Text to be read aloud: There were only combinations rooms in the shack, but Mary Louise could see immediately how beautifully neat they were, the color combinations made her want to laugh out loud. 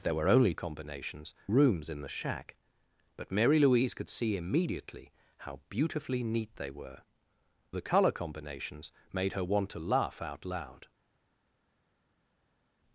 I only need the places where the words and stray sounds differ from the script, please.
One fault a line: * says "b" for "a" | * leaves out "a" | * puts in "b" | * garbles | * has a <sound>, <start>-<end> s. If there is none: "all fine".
all fine